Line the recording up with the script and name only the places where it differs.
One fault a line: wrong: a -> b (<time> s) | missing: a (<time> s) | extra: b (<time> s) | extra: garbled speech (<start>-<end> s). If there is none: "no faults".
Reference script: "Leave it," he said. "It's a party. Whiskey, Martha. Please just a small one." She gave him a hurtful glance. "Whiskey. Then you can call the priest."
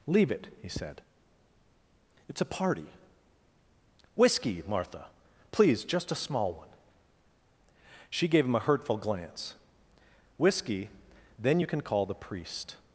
no faults